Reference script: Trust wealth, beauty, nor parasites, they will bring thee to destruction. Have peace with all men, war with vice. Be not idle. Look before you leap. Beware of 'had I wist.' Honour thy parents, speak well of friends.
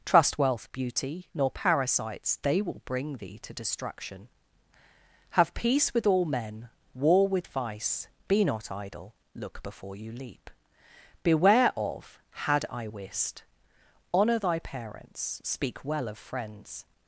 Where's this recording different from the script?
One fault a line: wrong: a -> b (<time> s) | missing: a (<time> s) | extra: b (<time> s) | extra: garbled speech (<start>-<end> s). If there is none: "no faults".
no faults